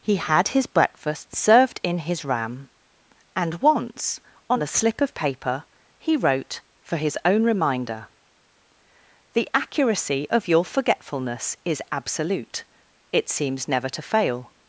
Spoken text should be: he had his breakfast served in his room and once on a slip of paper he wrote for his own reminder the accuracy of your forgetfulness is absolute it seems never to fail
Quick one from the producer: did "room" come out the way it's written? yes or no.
no